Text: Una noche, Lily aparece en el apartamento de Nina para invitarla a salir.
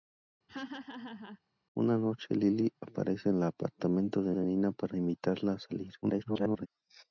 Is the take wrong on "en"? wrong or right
wrong